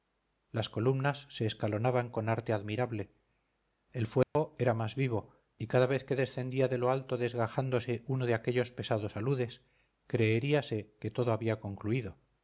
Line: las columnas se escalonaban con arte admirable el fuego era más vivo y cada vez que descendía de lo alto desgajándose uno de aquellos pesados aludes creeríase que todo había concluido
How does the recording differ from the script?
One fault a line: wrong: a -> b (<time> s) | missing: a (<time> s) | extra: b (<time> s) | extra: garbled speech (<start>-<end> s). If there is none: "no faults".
no faults